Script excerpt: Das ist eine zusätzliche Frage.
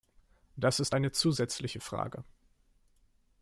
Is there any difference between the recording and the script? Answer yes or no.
no